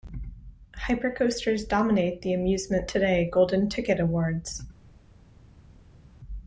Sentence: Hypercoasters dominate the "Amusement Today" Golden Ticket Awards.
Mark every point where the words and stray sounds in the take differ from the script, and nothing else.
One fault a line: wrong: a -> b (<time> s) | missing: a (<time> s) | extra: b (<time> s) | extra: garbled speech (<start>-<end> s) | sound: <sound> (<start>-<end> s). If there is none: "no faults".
no faults